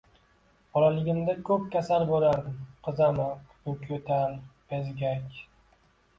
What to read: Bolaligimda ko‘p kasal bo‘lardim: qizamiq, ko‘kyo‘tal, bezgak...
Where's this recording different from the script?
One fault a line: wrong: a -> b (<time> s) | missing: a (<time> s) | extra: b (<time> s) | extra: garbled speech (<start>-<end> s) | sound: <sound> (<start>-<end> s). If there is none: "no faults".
no faults